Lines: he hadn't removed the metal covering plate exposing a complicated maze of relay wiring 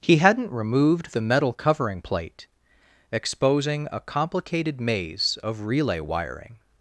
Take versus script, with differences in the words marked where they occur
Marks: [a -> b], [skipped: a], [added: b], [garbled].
he hadn't removed the metal covering plate exposing a complicated maze of relay wiring